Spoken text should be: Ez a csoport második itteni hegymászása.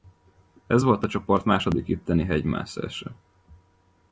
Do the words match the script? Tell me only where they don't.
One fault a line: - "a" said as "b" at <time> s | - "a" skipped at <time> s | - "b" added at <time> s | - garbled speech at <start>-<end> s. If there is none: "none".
- "volt" added at 0.8 s